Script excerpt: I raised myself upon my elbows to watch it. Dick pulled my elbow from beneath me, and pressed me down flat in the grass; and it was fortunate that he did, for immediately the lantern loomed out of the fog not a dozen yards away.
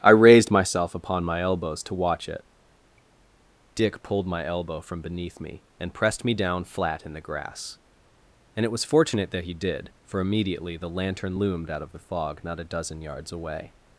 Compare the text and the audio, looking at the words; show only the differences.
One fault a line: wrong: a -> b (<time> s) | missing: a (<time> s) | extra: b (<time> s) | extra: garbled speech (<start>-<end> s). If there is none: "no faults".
no faults